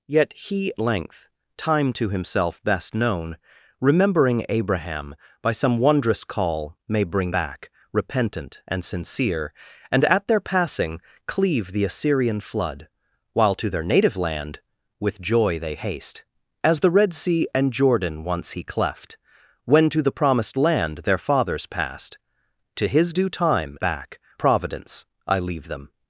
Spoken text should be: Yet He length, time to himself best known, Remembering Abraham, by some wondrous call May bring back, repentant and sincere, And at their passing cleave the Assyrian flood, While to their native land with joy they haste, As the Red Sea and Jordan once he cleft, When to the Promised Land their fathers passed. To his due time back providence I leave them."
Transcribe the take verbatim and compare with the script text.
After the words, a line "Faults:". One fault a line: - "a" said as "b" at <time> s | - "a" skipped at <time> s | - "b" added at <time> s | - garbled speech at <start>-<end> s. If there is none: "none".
Yet He length, time to himself best known, Remembering Abraham, by some wondrous call May bring back, repentant and sincere, And at their passing cleave the Assyrian flood, While to their native land with joy they haste, As the Red Sea and Jordan once he cleft, When to the Promised Land their fathers passed. To his due time back providence I leave them."
Faults:
none